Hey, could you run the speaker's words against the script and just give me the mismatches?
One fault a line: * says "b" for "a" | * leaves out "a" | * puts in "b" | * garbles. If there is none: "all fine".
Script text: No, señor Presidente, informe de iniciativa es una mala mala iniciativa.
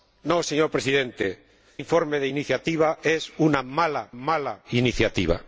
all fine